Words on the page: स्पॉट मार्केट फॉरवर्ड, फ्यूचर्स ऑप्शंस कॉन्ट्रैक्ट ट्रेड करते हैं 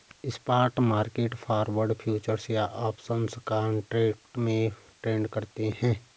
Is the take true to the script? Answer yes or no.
no